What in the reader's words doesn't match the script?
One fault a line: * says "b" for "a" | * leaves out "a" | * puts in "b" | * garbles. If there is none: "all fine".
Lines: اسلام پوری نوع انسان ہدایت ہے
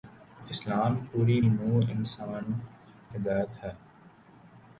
all fine